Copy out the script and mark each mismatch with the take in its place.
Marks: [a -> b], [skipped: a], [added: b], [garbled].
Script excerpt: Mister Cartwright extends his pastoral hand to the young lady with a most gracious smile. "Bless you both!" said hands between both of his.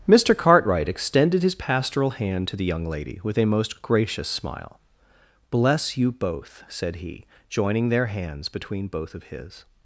Mister Cartwright [extends -> extended] his pastoral hand to the young lady with a most gracious smile. "Bless you both!" said [added: he joining their] hands between both of his.